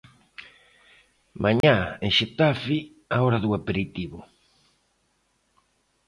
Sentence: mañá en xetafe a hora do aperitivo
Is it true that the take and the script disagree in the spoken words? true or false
false